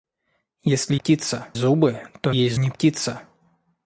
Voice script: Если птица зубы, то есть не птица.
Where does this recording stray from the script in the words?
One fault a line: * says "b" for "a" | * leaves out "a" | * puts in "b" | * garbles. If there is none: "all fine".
all fine